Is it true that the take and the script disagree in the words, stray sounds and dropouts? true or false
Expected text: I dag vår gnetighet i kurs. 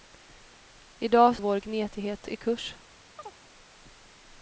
true